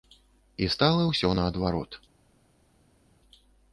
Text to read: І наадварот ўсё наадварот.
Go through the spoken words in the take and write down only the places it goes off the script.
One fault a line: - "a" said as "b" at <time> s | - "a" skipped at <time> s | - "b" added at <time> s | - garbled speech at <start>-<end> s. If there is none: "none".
- "наадварот" said as "стала" at 0.8 s